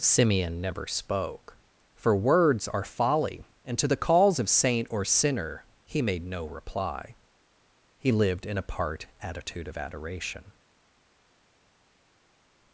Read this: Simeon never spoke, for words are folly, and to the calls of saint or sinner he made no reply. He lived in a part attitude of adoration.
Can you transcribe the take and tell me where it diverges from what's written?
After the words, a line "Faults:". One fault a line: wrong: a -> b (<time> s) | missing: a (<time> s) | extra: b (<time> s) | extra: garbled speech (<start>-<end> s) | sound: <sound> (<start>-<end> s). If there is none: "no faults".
Simeon never spoke, for words are folly, and to the calls of saint or sinner he made no reply. He lived in a part attitude of adoration.
Faults:
no faults